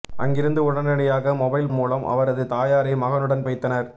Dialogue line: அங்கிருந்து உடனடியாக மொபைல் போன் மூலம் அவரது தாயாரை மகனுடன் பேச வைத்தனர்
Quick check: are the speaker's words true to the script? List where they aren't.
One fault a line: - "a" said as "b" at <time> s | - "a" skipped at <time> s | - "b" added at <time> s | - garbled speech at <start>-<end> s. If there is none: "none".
- "போன்" skipped at 1.7 s
- "பேச" skipped at 3.5 s